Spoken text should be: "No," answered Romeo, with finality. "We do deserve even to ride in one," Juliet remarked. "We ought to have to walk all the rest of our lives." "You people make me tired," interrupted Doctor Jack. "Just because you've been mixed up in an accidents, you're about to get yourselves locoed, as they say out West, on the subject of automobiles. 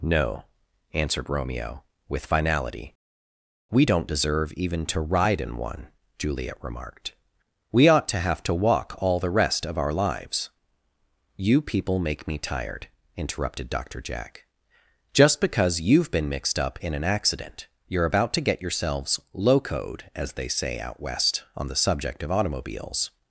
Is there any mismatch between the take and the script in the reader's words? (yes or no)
yes